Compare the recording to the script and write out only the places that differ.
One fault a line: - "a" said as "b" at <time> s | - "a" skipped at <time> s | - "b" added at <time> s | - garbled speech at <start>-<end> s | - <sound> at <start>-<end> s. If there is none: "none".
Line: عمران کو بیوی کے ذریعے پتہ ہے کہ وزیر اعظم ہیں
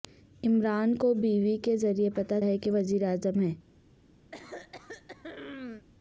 - throat clearing at 4.3-5.9 s